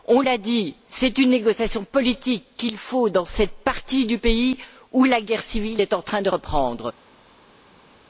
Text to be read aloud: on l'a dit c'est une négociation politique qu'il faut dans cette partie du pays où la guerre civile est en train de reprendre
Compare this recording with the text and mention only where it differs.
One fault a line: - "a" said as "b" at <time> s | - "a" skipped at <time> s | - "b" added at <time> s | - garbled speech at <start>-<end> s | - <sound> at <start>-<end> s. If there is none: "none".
none